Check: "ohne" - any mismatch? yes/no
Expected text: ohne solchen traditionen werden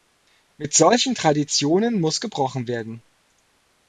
yes